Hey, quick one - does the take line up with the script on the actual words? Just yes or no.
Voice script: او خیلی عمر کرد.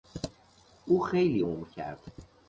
yes